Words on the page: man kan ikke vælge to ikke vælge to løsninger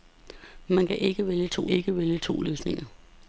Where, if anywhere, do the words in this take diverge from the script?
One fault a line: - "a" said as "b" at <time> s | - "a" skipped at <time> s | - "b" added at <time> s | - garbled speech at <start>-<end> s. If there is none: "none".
none